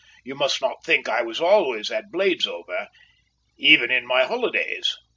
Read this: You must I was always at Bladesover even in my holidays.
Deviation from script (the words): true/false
true